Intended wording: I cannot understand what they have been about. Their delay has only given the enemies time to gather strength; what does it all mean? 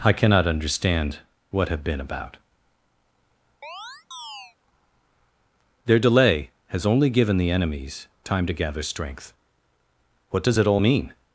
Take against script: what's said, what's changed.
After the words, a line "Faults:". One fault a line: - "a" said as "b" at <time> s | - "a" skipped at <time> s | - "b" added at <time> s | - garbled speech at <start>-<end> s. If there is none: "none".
I cannot understand what have been about. Their delay has only given the enemies time to gather strength; what does it all mean?
Faults:
- "they" skipped at 1.7 s